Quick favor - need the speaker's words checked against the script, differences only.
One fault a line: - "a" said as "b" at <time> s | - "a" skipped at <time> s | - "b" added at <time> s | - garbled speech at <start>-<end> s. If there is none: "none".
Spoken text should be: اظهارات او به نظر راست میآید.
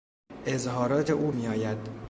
- "به نظر راست" skipped at 1.3 s